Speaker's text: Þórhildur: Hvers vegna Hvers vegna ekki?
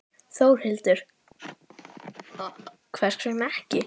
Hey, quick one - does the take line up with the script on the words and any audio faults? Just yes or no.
no